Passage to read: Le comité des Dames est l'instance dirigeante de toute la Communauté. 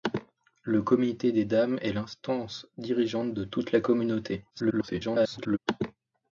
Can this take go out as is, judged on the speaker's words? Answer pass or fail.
fail